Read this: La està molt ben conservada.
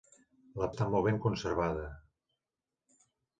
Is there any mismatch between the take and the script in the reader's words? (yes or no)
no